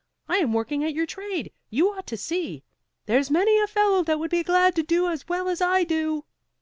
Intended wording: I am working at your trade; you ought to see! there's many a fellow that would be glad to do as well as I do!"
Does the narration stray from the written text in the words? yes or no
no